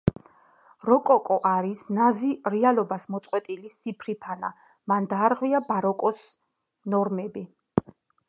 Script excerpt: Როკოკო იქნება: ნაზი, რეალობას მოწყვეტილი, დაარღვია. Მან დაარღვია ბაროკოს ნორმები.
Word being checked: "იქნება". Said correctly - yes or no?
no